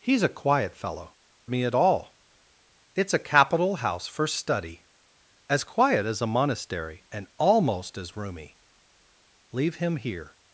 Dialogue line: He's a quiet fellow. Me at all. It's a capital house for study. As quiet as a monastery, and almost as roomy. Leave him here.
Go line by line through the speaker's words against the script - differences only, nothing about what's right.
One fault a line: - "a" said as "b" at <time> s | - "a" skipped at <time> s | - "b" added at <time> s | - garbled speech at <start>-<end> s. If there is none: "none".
none